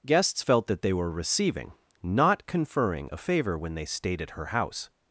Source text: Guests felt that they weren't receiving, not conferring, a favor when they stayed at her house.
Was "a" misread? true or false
false